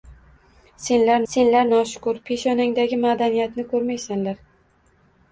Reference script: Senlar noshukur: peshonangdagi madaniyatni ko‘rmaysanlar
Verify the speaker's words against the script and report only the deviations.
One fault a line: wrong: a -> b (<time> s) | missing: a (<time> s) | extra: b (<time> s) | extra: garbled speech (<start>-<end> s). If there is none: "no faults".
extra: senlar (1.3 s)